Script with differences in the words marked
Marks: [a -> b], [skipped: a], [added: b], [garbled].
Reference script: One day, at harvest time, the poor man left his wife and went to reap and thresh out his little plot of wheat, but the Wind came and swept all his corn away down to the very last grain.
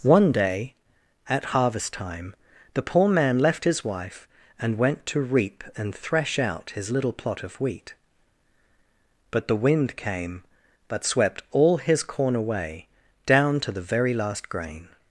One day, at harvest time, the poor man left his wife and went to reap and thresh out his little plot of wheat, but the Wind came [and -> but] swept all his corn away down to the very last grain.